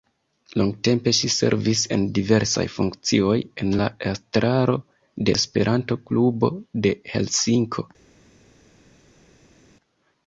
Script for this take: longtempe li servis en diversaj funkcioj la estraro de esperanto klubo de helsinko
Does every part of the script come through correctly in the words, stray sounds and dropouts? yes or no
no